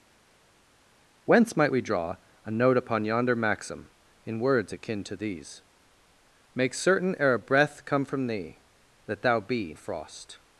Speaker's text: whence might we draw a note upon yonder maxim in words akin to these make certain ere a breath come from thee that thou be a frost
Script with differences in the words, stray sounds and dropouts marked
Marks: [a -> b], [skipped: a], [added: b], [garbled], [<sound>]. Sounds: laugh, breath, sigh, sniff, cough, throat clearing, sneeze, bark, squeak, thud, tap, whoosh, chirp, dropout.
whence might we draw a note upon yonder maxim in words akin to these make certain ere a breath come from thee that thou be a frost